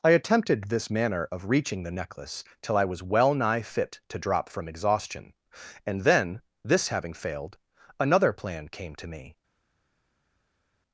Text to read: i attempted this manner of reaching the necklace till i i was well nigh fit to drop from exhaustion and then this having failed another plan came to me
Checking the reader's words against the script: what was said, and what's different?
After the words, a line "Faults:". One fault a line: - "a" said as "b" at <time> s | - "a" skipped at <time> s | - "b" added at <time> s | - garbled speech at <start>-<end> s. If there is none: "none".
i attempted this manner of reaching the necklace till i was well nigh fit to drop from exhaustion and then this having failed another plan came to me
Faults:
- "i" skipped at 2.9 s